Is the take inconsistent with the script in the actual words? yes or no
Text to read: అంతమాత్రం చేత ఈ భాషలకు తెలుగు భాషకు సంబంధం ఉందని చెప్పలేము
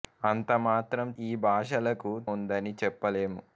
yes